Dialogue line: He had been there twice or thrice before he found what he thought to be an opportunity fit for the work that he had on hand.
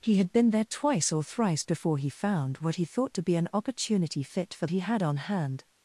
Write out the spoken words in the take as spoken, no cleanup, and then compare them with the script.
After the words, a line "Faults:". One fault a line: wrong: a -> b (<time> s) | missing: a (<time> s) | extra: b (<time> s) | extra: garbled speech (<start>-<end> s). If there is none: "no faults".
He had been there twice or thrice before he found what he thought to be an opportunity fit for he had on hand.
Faults:
missing: the work that (4.7 s)